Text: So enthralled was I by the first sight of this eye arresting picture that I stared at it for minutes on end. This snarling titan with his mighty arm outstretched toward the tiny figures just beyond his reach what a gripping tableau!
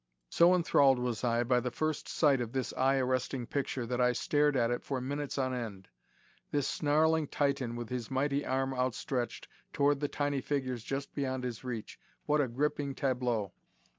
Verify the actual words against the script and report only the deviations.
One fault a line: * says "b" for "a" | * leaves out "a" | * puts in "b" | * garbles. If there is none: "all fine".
all fine